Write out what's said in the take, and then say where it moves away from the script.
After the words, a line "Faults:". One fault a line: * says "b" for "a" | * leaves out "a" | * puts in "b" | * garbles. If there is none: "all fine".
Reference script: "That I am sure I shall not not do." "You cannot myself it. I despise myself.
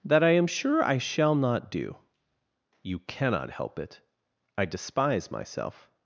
"That I am sure I shall not do." "You cannot help it. I despise myself.
Faults:
* leaves out "not"
* says "help" for "myself"